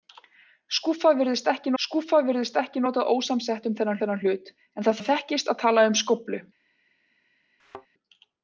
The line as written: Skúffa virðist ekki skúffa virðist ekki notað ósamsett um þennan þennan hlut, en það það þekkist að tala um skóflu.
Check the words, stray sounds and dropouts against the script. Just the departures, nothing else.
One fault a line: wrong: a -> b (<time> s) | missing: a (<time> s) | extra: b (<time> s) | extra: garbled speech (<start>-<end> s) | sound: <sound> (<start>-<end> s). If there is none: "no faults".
sound: thud (7.6-7.9 s)